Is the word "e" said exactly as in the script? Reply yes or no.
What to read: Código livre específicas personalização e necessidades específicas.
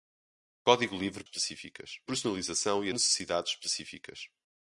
yes